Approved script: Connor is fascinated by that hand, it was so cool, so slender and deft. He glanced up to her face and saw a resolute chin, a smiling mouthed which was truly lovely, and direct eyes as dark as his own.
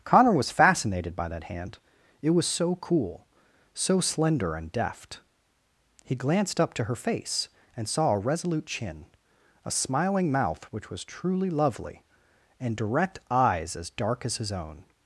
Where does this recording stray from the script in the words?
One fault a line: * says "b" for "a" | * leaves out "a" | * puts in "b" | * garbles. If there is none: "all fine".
* says "was" for "is"
* says "mouth" for "mouthed"